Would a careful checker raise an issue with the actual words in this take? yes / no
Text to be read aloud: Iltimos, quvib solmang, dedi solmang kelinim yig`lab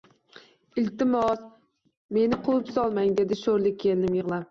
yes